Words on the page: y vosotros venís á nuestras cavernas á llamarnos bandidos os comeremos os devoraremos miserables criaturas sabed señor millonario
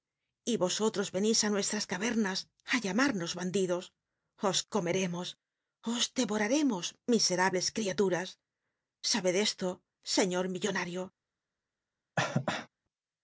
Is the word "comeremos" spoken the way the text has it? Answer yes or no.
yes